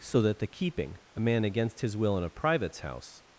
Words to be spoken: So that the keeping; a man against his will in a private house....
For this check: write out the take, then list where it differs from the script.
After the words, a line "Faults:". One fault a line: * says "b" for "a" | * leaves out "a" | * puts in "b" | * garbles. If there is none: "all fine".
So that the keeping; a man against his will in a privates house....
Faults:
* says "privates" for "private"